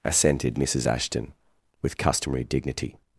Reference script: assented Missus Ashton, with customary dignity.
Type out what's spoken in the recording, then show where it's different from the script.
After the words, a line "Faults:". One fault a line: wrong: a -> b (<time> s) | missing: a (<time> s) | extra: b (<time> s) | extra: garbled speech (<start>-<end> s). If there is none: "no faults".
assented Missus Ashton, with customary dignity.
Faults:
no faults